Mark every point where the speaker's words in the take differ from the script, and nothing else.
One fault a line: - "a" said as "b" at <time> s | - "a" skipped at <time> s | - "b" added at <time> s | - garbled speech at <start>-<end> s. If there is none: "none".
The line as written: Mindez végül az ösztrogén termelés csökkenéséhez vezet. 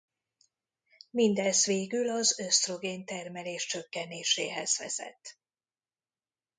none